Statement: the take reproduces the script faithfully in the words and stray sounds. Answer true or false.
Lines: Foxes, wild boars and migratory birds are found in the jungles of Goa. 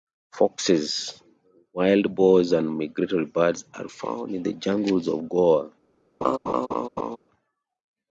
false